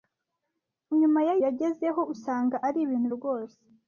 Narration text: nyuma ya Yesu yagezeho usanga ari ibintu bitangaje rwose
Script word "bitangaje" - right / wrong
wrong